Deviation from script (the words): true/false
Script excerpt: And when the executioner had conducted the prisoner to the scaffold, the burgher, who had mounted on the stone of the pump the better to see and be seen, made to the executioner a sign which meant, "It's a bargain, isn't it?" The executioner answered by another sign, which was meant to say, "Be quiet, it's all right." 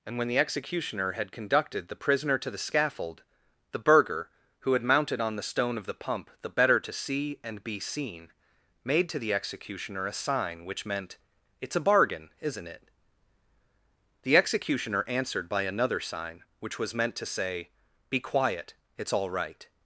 false